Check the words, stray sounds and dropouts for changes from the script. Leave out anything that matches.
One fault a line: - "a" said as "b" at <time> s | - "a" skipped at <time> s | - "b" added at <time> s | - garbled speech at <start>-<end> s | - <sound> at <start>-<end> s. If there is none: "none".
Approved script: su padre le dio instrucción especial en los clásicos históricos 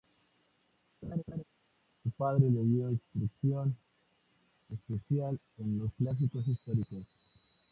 - laugh at 1.0-1.4 s